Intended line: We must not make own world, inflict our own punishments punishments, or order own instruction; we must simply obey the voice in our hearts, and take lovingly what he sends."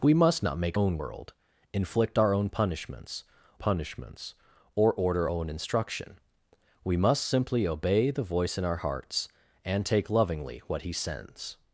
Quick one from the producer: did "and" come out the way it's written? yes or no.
yes